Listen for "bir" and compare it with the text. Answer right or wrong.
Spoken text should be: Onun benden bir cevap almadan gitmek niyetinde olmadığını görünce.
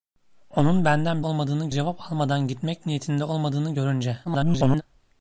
wrong